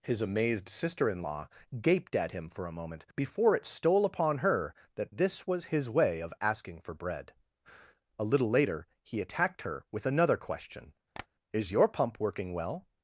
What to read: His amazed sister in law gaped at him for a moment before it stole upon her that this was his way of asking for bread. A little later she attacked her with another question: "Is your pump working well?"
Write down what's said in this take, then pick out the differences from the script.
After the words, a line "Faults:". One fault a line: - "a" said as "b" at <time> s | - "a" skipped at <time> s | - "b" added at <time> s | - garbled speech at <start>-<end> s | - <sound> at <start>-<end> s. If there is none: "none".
His amazed sister in law gaped at him for a moment before it stole upon her that this was his way of asking for bread. A little later he attacked her with another question: "Is your pump working well?"
Faults:
- "she" said as "he" at 9.0 s
- tap at 11.1-11.3 s